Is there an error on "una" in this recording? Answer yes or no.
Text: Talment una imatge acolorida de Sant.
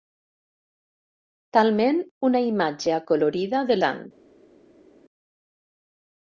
no